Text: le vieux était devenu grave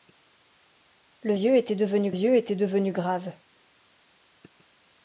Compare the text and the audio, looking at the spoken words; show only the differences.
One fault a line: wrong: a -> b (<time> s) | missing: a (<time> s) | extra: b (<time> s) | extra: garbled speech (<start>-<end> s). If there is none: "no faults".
extra: vieux était devenu (2.1 s)